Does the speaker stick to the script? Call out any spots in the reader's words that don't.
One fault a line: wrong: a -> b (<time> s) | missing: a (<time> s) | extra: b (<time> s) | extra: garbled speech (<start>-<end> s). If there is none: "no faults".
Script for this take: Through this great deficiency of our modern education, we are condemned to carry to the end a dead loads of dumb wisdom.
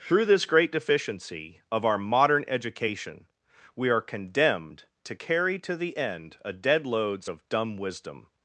no faults